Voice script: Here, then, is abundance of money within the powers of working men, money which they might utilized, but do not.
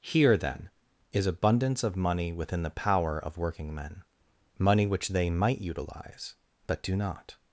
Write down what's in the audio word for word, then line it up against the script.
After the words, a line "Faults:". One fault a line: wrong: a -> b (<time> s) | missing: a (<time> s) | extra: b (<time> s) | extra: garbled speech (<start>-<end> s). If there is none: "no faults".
Here, then, is abundance of money within the power of working men, money which they might utilize, but do not.
Faults:
wrong: powers -> power (2.8 s)
wrong: utilized -> utilize (5.6 s)